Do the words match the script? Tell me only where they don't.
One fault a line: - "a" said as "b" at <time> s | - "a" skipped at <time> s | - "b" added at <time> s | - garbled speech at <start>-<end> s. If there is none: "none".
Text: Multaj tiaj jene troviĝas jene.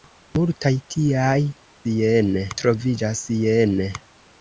none